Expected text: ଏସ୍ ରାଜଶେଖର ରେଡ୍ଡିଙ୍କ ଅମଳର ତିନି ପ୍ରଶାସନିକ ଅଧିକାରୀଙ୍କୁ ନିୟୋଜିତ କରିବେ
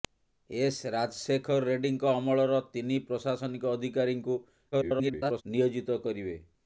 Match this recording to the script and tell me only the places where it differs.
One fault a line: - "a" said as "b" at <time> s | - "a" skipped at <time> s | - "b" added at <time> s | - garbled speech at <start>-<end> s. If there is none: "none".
- garbled speech at 4.7-5.4 s